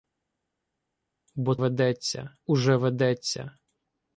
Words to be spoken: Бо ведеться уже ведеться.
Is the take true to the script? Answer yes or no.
yes